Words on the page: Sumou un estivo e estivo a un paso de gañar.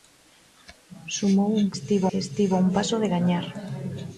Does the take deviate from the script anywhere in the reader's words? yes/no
no